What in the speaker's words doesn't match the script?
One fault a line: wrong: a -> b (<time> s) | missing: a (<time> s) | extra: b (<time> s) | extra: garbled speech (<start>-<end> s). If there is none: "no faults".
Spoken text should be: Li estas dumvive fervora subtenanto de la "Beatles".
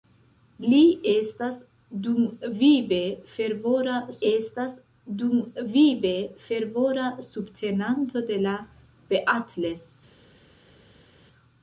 extra: estas dumvive fervora (4.3 s)